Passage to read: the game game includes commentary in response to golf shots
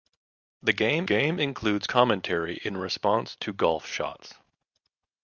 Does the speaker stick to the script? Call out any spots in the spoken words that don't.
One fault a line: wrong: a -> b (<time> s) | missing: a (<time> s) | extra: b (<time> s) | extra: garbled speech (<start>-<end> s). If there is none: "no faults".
no faults